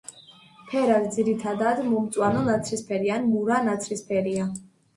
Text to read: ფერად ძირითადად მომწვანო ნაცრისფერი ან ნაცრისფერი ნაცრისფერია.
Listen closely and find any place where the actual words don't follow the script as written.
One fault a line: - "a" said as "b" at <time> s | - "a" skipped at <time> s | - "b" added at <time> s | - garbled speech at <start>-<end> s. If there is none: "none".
- "ნაცრისფერი" said as "მურა" at 3.3 s